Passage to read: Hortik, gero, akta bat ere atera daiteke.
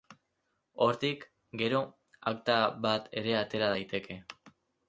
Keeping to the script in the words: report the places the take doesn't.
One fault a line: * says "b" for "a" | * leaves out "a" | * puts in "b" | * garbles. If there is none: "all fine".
all fine